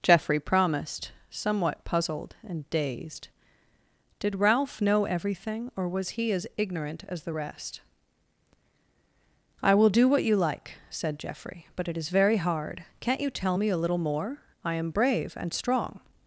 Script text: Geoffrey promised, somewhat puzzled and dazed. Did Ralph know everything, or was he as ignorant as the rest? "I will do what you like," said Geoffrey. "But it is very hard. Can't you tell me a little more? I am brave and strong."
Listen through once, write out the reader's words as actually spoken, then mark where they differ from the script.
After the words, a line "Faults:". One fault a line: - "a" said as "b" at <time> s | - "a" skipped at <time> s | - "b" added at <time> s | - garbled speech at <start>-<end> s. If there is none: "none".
Geoffrey promised, somewhat puzzled and dazed. Did Ralph know everything, or was he as ignorant as the rest? "I will do what you like," said Geoffrey. "But it is very hard. Can't you tell me a little more? I am brave and strong."
Faults:
none